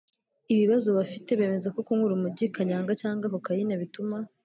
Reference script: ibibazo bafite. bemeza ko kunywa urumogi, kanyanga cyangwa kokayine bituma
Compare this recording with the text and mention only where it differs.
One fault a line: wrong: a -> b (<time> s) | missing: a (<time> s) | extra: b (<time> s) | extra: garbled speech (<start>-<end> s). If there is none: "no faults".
no faults